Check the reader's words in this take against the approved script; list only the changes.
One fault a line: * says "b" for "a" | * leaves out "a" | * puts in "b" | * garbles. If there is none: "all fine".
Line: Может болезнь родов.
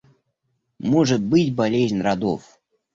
* puts in "быть"